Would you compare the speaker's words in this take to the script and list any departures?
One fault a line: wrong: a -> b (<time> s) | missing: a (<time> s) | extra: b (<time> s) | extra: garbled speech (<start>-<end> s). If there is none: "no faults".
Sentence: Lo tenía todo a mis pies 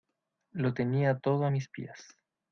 no faults